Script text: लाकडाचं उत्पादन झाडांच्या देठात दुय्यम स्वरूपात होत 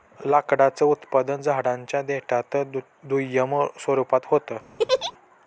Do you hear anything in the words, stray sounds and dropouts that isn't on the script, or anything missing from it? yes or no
yes